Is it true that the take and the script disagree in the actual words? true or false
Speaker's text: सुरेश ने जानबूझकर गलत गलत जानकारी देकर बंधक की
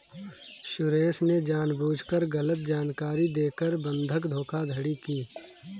true